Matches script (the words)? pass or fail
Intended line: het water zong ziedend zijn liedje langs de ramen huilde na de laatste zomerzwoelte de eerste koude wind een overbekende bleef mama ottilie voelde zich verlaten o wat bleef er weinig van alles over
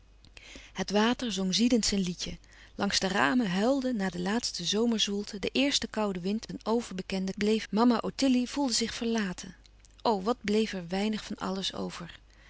pass